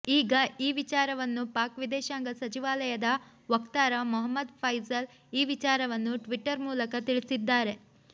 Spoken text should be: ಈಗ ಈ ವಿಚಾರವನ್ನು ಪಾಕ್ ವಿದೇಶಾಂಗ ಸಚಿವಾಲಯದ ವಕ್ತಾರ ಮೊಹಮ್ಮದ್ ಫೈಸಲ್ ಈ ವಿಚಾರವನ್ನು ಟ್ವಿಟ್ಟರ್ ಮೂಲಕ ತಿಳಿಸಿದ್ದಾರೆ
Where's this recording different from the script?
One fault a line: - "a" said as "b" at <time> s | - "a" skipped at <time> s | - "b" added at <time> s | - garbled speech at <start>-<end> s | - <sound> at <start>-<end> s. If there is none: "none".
none